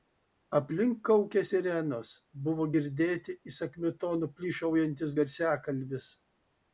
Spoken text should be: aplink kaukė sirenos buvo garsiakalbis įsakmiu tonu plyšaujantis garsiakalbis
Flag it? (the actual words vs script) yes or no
yes